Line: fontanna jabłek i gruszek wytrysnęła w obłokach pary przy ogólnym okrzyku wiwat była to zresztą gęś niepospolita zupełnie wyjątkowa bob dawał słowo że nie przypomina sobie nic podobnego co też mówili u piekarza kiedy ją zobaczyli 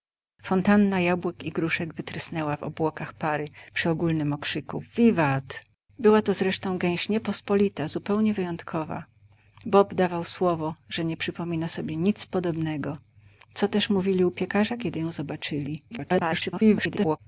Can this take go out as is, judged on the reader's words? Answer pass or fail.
fail